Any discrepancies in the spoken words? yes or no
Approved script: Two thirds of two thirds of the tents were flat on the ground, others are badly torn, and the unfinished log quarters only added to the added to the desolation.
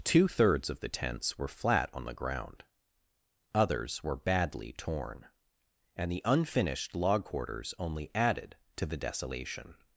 yes